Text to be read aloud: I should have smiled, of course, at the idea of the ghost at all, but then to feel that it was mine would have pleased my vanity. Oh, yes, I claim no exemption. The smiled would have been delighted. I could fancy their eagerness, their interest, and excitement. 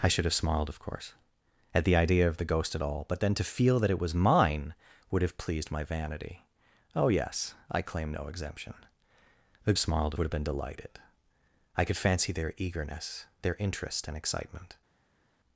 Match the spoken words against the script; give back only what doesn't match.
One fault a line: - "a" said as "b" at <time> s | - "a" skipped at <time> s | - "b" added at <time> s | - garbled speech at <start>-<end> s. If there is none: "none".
none